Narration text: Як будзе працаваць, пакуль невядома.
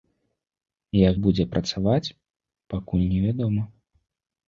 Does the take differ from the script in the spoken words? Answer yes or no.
no